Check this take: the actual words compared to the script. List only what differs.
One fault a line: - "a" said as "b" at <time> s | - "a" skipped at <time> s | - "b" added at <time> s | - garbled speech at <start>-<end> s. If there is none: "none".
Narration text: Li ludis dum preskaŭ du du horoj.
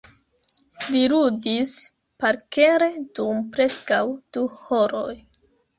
- "parkere" added at 2.2 s
- "du" skipped at 4.5 s